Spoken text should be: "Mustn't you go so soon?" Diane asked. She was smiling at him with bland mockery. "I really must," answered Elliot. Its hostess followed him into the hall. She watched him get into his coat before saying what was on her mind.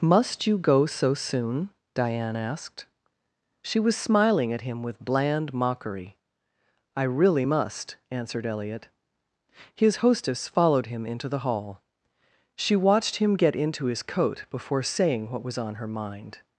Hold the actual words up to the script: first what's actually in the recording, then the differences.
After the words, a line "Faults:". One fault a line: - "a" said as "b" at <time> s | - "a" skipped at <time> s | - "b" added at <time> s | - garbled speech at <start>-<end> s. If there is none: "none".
"Must you go so soon?" Diane asked. She was smiling at him with bland mockery. "I really must," answered Elliot. His hostess followed him into the hall. She watched him get into his coat before saying what was on her mind.
Faults:
- "Mustn't" said as "Must" at 0.0 s
- "Its" said as "His" at 9.8 s